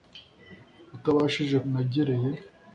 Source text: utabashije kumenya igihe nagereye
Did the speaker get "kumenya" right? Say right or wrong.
wrong